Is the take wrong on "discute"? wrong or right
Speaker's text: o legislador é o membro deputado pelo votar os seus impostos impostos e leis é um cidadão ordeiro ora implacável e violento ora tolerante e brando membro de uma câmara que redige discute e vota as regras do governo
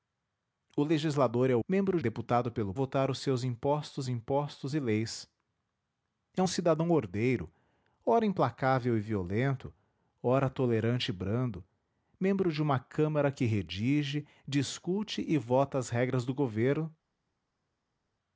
right